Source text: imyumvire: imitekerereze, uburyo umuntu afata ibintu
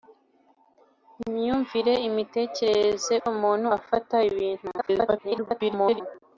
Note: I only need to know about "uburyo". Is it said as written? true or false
false